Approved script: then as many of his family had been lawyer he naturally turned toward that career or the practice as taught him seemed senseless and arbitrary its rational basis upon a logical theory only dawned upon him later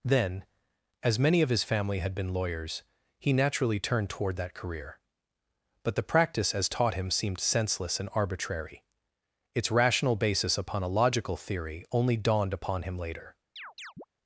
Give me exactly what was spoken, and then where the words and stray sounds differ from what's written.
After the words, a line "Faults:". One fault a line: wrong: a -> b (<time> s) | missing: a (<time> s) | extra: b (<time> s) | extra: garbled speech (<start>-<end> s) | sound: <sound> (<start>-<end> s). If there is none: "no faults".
then as many of his family had been lawyers he naturally turned toward that career but the practice as taught him seemed senseless and arbitrary its rational basis upon a logical theory only dawned upon him later
Faults:
wrong: lawyer -> lawyers (2.3 s)
wrong: or -> but (5.8 s)
sound: chirp (13.6-14.0 s)